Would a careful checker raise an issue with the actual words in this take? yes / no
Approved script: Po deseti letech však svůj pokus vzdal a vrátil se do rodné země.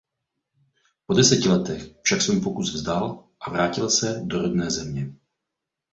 no